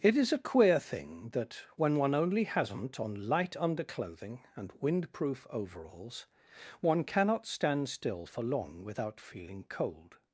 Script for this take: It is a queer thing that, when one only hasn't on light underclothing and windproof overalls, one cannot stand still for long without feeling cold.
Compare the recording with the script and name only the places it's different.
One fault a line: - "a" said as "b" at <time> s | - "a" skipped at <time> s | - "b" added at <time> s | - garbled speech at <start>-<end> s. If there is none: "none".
none